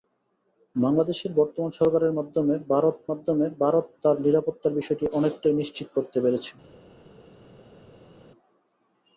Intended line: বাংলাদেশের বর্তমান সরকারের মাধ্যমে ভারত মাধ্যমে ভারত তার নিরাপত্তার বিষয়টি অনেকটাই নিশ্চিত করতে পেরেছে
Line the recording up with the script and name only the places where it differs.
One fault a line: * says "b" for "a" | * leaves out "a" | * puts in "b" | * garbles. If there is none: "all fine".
all fine